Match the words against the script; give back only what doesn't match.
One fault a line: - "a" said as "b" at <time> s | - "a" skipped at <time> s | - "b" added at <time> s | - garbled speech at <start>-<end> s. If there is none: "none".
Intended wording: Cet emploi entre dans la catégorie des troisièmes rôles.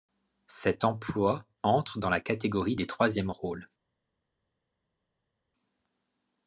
none